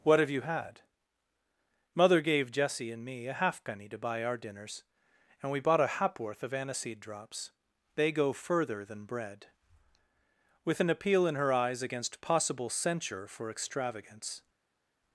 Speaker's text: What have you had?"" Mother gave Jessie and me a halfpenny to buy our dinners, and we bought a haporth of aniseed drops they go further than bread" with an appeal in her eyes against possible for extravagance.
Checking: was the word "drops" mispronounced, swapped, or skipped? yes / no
no